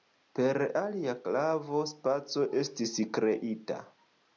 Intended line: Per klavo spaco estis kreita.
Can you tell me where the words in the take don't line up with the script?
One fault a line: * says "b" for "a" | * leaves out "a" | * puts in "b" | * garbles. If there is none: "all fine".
* puts in "alia"